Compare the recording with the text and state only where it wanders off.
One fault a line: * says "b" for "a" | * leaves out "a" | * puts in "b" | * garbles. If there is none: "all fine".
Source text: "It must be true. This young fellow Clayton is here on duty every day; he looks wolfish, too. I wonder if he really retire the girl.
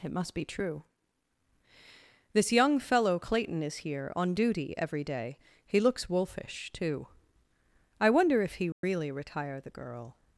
all fine